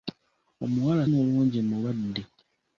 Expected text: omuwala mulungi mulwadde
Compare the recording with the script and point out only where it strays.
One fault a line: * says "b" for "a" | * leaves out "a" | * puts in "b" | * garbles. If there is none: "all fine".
all fine